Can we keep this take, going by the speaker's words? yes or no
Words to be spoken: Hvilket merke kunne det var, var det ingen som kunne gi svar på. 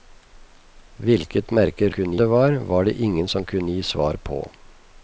yes